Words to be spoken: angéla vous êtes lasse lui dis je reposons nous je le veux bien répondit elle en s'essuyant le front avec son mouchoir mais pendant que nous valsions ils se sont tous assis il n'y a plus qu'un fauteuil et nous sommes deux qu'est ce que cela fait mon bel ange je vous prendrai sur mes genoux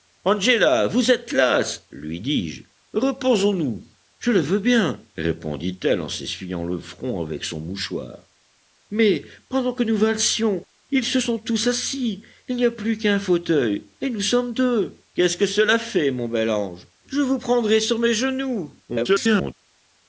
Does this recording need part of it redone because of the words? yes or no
yes